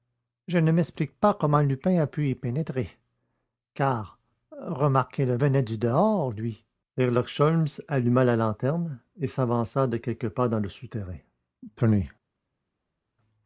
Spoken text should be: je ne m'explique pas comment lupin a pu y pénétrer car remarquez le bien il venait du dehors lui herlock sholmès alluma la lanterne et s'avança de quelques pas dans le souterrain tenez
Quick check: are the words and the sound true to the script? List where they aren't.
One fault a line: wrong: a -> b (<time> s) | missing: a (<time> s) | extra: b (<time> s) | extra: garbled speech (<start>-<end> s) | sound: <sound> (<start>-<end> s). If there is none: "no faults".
missing: bien il (5.4 s)